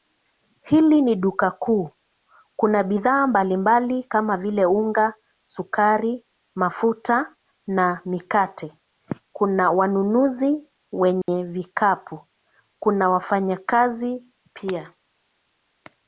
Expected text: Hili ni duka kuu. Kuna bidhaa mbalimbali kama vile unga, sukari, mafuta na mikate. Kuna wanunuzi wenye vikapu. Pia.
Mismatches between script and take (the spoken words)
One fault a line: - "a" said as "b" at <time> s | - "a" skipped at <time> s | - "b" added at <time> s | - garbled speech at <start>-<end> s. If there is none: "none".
- "Kuna wafanyakazi" added at 12.8 s